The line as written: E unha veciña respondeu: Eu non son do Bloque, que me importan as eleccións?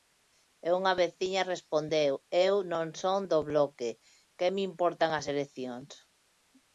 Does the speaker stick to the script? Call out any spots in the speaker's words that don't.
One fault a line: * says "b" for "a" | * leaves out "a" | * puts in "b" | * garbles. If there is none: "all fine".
all fine